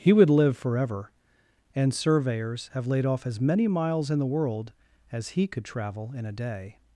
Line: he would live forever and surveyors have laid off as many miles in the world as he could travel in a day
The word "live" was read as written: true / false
true